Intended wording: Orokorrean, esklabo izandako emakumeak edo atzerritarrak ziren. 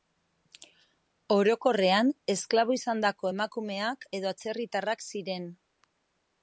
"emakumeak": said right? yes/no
yes